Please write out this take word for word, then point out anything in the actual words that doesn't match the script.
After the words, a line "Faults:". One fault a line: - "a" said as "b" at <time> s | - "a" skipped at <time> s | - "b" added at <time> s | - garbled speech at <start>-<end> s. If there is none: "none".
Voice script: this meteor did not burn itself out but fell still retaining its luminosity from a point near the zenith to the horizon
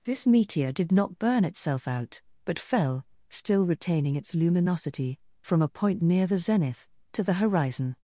this meteor did not burn itself out but fell still retaining its luminosity from a point near the zenith to the horizon
Faults:
none